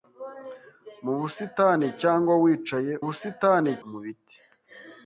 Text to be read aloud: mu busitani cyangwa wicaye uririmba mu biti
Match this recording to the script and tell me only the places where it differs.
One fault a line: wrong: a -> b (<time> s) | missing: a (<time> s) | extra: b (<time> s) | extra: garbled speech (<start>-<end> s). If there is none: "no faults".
wrong: uririmba -> busitani (3.0 s)